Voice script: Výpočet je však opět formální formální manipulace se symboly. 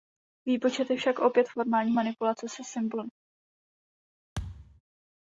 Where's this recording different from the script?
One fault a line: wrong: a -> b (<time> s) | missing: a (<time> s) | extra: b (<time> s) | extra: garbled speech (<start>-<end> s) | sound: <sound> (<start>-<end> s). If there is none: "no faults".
missing: formální (1.9 s)
sound: thud (4.4-4.8 s)